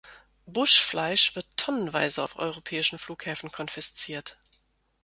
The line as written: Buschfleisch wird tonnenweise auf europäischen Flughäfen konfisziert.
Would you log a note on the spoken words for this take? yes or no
no